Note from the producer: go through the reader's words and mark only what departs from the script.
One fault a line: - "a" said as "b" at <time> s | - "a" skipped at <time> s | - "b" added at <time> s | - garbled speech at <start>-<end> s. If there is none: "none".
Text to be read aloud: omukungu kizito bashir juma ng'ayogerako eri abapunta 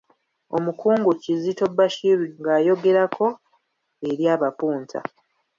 - "juma" skipped at 2.2 s